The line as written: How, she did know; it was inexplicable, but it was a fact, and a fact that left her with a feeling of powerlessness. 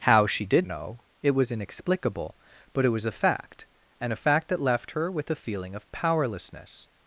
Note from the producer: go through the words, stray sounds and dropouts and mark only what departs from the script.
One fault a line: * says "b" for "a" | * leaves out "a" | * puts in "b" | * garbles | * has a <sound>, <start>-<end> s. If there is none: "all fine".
all fine